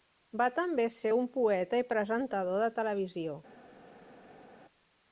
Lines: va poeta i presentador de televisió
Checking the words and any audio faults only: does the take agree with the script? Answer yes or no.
no